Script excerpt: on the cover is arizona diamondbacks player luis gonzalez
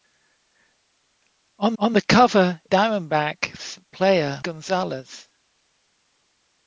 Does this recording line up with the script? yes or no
no